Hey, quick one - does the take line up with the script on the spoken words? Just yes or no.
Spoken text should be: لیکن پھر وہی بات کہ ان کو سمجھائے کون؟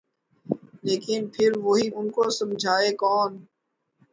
no